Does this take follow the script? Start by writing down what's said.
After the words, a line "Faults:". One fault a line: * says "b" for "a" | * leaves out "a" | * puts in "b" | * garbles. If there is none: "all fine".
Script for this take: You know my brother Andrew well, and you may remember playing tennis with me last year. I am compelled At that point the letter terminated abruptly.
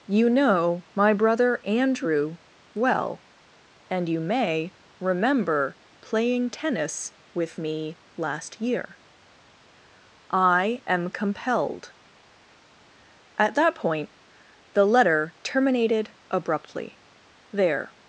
You know my brother Andrew well, and you may remember playing tennis with me last year. I am compelled At that point the letter terminated abruptly. There
Faults:
* puts in "There"